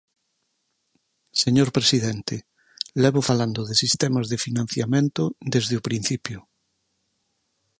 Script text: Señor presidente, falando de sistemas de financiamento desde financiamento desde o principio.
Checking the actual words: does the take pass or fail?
fail